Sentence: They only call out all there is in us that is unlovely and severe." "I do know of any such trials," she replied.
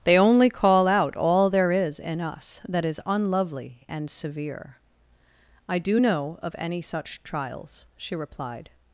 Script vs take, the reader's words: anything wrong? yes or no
no